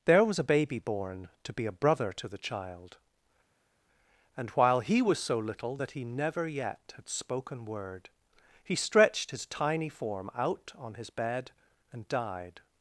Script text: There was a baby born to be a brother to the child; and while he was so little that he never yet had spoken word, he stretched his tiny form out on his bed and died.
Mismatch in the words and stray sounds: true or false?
false